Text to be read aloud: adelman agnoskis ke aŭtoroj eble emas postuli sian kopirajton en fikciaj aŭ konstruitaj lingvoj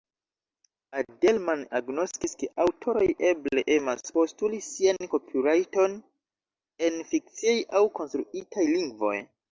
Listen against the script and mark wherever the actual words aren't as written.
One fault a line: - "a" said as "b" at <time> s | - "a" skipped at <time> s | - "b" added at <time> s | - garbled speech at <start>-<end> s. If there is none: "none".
none